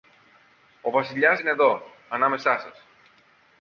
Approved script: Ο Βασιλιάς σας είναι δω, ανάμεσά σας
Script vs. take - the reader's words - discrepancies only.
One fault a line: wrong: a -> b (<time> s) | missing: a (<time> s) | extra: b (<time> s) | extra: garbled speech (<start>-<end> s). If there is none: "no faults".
missing: σας (1.4 s)